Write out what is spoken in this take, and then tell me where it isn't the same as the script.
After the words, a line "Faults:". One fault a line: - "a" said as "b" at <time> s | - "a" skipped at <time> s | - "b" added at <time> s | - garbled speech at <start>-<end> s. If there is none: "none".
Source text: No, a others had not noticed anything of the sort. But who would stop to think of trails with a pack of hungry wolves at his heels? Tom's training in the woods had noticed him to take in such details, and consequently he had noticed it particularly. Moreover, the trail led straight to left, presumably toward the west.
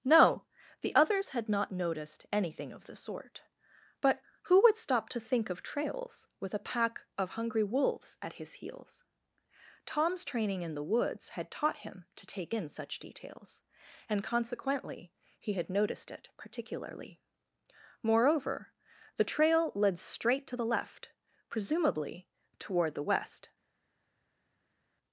No, the others had not noticed anything of the sort. But who would stop to think of trails with a pack of hungry wolves at his heels? Tom's training in the woods had taught him to take in such details, and consequently he had noticed it particularly. Moreover, the trail led straight to the left, presumably toward the west.
Faults:
- "a" said as "the" at 0.8 s
- "noticed" said as "taught" at 11.5 s
- "the" added at 20.6 s